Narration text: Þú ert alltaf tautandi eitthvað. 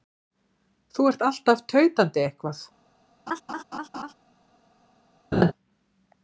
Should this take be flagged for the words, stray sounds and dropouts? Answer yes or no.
yes